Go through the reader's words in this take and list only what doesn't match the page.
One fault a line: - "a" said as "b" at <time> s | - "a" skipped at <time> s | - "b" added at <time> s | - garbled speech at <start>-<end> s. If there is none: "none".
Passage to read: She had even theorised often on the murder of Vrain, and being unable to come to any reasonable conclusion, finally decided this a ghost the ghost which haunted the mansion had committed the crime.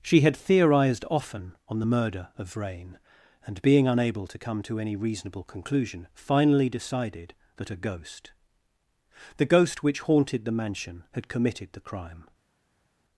- "even" skipped at 0.3 s
- "this" said as "that" at 7.6 s